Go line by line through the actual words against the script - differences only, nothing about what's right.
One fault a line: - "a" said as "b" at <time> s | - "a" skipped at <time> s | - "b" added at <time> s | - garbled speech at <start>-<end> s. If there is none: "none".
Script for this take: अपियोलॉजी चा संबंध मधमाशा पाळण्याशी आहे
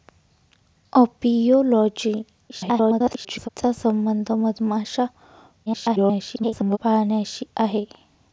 - garbled speech at 2.5-3.5 s
- garbled speech at 5.7-6.8 s